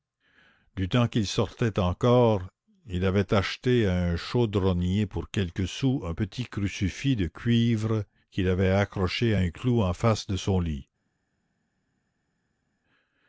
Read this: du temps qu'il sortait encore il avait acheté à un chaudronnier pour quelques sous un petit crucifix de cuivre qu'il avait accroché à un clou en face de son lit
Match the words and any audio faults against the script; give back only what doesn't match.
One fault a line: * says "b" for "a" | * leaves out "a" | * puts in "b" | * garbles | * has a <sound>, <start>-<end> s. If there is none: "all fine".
all fine